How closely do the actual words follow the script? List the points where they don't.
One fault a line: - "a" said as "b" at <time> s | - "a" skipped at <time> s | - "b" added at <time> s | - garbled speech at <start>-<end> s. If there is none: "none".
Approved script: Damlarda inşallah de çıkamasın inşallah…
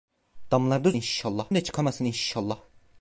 none